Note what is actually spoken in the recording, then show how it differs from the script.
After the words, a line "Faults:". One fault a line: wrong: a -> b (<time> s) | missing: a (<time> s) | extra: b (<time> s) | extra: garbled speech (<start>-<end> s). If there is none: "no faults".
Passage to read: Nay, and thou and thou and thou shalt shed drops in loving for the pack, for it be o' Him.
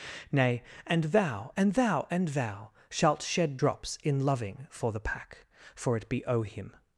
Nay, and thou and thou and thou shalt shed drops in loving for the pack, for it be o' Him.
Faults:
no faults